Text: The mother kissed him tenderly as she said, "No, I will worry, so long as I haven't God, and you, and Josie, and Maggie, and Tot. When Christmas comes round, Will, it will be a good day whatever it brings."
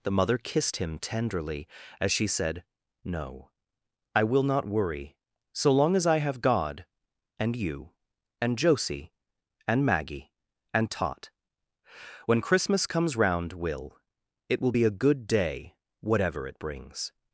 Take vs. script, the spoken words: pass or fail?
fail